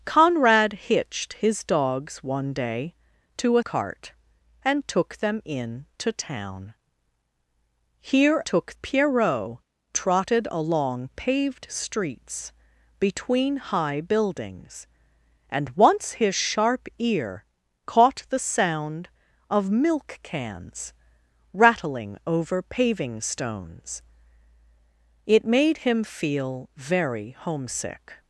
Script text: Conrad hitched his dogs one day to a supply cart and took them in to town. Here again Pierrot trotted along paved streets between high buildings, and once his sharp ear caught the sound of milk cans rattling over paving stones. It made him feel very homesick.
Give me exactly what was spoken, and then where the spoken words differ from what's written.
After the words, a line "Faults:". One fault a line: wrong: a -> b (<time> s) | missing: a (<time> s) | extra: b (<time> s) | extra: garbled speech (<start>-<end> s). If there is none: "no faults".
Conrad hitched his dogs one day to a cart and took them in to town. Here took Pierrot trotted along paved streets between high buildings, and once his sharp ear caught the sound of milk cans rattling over paving stones. It made him feel very homesick.
Faults:
missing: supply (3.6 s)
wrong: again -> took (8.4 s)